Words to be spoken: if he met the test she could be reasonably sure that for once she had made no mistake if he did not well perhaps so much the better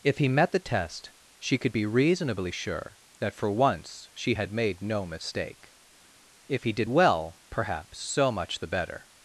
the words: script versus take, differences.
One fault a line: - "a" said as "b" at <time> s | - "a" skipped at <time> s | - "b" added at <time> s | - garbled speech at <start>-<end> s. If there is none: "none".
- "not" skipped at 6.9 s